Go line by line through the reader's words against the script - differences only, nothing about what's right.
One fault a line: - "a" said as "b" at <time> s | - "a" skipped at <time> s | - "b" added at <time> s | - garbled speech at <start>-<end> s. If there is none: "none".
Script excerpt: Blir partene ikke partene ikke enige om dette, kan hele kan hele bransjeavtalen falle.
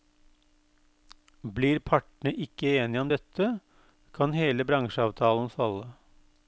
- "partene ikke" skipped at 2.7 s
- "kan hele" skipped at 4.7 s